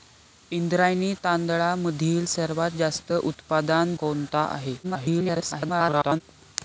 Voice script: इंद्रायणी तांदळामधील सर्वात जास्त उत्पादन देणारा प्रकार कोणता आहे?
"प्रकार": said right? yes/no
no